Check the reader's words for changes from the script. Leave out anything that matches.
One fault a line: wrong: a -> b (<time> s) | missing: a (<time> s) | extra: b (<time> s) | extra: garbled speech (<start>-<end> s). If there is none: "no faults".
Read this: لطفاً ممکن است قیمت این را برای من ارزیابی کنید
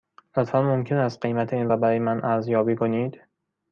no faults